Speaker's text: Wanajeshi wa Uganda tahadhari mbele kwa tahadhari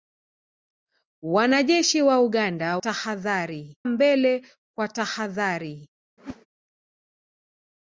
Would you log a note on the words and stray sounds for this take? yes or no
yes